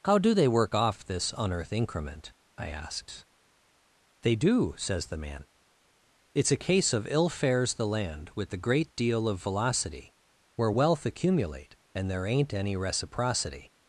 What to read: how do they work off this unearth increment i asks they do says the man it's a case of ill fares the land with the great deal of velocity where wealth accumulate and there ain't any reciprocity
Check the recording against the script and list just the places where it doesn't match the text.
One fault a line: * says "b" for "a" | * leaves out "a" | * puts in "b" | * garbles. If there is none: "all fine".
all fine